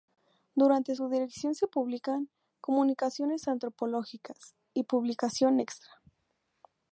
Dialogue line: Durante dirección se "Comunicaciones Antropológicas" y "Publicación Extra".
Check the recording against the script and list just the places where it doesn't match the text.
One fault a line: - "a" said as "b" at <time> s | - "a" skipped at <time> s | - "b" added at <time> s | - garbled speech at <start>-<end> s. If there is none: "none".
- "su" added at 0.9 s
- "publican" added at 1.7 s